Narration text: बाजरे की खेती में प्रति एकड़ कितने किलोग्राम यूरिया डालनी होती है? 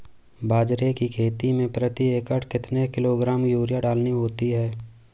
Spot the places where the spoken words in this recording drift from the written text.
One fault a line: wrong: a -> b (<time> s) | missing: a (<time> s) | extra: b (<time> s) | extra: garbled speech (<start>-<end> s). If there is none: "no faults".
no faults